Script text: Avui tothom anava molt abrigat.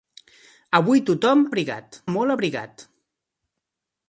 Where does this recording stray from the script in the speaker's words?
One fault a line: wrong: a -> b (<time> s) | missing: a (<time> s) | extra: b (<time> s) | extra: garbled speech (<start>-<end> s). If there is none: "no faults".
wrong: anava -> abrigat (1.5 s)